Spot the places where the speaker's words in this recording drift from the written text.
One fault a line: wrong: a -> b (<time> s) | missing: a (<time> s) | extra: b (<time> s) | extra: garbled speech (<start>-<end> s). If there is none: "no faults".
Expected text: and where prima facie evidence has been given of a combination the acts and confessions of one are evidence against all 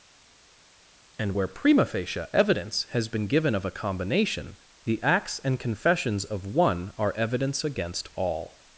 no faults